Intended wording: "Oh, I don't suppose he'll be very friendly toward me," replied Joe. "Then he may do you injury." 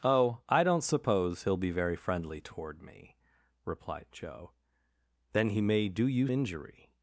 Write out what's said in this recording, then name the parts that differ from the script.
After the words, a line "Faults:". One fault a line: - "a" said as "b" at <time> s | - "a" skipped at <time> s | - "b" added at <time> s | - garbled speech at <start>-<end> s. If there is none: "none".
"Oh, I don't suppose he'll be very friendly toward me," replied Joe. "Then he may do you injury."
Faults:
none